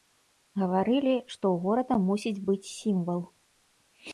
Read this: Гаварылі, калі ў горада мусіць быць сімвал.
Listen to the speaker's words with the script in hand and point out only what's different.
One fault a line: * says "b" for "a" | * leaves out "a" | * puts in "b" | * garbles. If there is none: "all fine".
* says "што" for "калі"